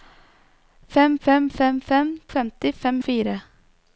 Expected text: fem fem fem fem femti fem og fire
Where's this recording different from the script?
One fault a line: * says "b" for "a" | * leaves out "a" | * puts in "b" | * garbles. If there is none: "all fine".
all fine